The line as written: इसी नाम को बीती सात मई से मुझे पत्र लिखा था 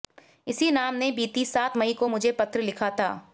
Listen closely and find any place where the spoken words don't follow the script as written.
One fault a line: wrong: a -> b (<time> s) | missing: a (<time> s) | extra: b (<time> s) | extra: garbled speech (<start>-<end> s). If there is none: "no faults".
wrong: को -> ने (0.9 s)
wrong: से -> को (1.9 s)